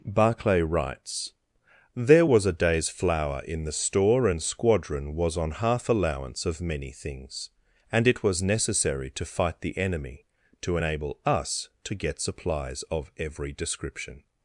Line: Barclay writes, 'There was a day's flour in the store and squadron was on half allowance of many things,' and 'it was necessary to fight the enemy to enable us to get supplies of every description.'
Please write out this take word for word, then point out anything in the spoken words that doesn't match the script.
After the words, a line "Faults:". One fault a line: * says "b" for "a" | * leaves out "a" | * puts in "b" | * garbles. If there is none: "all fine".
Barclay writes, 'There was a day's flour in the store and squadron was on half allowance of many things,' and 'it was necessary to fight the enemy to enable us to get supplies of every description.'
Faults:
all fine